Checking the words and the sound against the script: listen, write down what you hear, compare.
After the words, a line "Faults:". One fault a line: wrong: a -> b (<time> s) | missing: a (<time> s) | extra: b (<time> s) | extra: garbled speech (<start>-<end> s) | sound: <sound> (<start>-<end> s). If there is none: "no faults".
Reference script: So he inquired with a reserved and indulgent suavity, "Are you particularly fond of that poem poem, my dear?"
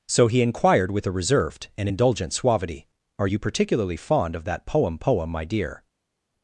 So he inquired with a reserved and indulgent suavity, "Are you particularly fond of that poem poem, my dear?"
Faults:
no faults